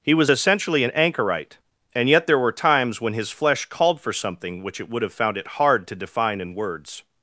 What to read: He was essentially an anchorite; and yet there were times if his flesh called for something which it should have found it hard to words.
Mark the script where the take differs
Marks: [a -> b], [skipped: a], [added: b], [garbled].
He was essentially an anchorite; and yet there were times [if -> when] his flesh called for something which it [should -> would] have found it hard to [added: define in] words.